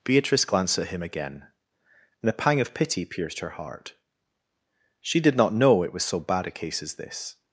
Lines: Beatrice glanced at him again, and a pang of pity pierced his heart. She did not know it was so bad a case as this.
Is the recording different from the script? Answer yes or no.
yes